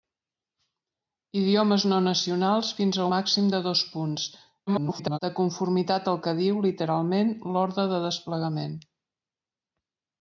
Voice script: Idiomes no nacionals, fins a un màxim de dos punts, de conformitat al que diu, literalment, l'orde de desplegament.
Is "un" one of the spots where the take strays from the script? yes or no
yes